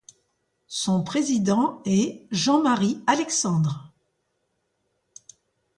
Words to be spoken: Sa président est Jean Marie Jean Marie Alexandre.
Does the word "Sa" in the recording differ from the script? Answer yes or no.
yes